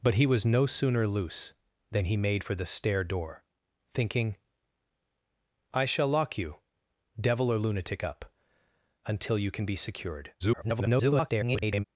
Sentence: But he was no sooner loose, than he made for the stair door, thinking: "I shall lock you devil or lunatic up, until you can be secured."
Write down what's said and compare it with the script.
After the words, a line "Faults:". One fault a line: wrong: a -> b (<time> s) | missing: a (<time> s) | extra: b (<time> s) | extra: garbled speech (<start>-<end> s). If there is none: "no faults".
But he was no sooner loose, than he made for the stair door, thinking: "I shall lock you devil or lunatic up, until you can be secured." [garbled]
Faults:
extra: garbled speech (10.4-11.8 s)